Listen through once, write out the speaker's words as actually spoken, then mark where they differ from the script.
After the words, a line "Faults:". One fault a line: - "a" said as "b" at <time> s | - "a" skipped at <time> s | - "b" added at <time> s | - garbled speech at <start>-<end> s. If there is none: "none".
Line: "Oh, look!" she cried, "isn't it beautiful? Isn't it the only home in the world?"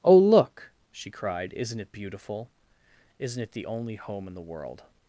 "Oh, look!" she cried, "isn't it beautiful? Isn't it the only home in the world?"
Faults:
none